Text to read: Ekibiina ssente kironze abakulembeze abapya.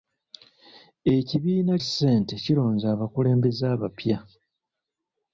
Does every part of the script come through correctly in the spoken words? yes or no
yes